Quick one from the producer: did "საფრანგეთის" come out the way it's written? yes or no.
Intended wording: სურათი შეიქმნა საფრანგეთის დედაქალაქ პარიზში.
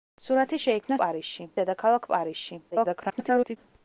no